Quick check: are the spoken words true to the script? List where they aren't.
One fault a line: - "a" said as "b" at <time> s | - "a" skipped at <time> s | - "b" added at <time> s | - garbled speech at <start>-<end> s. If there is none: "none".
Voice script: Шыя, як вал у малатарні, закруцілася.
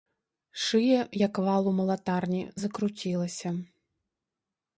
none